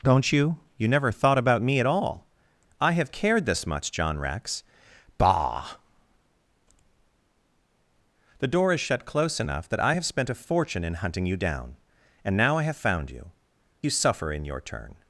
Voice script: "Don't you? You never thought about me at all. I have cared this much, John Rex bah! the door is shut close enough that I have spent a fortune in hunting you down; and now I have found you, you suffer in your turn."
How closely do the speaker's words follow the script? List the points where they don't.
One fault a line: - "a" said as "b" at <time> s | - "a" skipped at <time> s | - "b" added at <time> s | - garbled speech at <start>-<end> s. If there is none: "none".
none